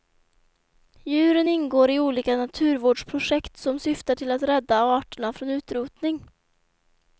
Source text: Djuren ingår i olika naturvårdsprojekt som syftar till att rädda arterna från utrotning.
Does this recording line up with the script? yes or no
yes